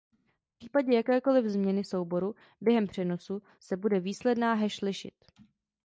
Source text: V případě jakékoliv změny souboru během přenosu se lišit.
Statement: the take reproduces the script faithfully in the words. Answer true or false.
false